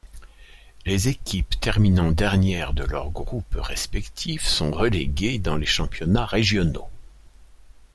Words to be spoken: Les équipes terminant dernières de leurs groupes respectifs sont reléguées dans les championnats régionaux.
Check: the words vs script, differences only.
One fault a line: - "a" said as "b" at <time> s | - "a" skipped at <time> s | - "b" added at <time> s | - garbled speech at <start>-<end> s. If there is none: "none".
none